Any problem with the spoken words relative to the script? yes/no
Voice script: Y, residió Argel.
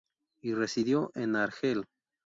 yes